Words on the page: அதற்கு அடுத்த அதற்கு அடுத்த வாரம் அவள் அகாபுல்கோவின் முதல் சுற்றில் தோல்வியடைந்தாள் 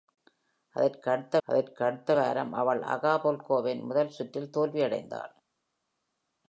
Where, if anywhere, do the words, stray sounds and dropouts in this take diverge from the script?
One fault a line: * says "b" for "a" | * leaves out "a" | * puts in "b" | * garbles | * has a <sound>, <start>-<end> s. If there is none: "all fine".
all fine